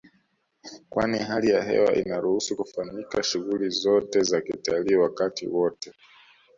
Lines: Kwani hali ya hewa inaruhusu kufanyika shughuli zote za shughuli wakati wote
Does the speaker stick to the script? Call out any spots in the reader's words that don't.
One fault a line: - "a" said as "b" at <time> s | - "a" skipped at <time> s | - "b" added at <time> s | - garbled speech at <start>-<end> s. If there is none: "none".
- "shughuli" said as "kitalii" at 4.4 s